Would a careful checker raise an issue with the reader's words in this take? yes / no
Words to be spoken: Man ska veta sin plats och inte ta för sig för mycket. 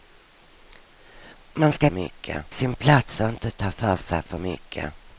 yes